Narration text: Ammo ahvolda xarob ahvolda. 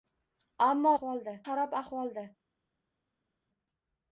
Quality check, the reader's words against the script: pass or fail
pass